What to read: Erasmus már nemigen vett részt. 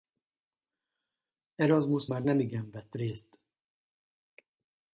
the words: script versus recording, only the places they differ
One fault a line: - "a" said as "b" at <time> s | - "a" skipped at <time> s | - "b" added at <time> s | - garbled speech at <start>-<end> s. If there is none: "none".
none